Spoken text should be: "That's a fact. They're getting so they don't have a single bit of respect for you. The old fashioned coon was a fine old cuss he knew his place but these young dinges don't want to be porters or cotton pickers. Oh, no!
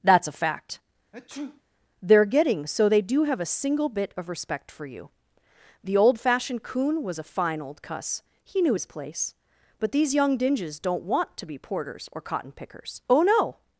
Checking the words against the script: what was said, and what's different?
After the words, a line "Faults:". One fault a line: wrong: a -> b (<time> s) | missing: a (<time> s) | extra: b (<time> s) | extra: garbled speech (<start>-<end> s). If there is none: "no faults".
"That's a fact. They're getting so they do have a single bit of respect for you. The old fashioned coon was a fine old cuss he knew his place but these young dinges don't want to be porters or cotton pickers. Oh, no!
Faults:
wrong: don't -> do (3.0 s)